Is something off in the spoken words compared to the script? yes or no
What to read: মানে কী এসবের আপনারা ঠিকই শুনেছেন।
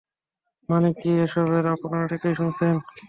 no